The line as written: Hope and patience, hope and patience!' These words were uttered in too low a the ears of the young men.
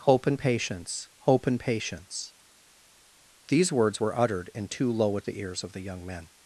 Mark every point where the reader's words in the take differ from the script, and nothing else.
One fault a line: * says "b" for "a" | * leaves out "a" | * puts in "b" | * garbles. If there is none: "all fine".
all fine